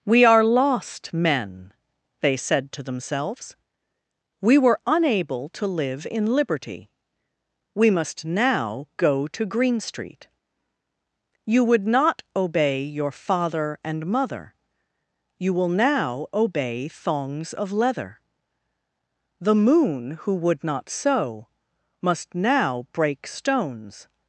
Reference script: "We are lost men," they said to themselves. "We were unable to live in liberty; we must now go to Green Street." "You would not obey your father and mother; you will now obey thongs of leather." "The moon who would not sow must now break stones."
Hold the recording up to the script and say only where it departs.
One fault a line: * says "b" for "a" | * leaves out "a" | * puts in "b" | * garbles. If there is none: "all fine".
all fine